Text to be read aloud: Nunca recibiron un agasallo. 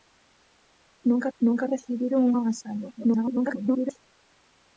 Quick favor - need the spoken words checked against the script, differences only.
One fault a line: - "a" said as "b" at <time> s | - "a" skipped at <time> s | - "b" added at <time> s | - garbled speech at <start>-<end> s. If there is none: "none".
- "nunca" added at 1.4 s
- garbled speech at 3.0-4.0 s